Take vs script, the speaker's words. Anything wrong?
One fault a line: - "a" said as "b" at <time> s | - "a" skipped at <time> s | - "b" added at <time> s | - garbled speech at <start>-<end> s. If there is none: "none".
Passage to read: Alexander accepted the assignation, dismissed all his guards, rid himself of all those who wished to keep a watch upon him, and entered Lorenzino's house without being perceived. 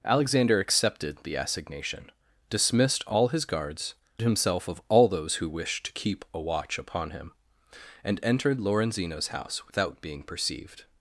- "rid" skipped at 3.9 s